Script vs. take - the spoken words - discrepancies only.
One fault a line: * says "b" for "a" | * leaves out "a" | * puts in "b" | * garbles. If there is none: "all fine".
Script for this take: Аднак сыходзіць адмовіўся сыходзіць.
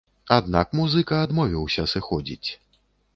* says "музыка" for "сыходзіць"